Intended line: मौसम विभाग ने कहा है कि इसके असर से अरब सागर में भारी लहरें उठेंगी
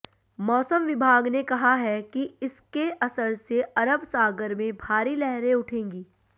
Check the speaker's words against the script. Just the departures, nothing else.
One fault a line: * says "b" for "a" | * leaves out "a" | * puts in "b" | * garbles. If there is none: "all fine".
all fine